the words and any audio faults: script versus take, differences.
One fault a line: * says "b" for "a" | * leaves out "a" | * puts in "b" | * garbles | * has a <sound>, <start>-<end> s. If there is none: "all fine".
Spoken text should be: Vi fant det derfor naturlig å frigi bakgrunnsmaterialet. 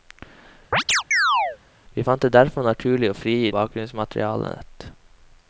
* has a chirp, 0.7-1.6 s